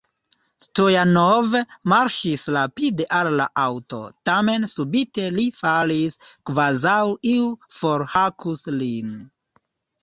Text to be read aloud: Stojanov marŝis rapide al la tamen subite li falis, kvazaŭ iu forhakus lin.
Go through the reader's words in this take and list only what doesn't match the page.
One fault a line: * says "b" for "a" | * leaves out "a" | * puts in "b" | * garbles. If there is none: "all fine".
* puts in "aŭto"